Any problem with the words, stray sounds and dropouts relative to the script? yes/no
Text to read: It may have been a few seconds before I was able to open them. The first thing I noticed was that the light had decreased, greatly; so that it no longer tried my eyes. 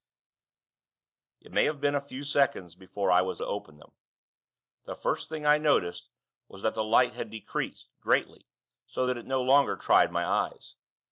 yes